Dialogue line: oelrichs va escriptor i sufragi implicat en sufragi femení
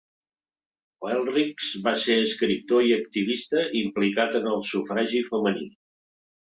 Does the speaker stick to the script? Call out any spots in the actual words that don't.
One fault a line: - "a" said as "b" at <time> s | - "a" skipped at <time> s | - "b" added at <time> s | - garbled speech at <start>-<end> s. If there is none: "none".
- "ser" added at 2.0 s
- "sufragi" said as "activista" at 3.0 s
- "el" added at 4.6 s